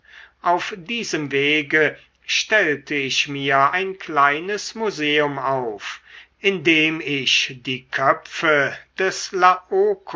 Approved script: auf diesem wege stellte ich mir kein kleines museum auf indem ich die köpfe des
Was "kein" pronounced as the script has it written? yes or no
no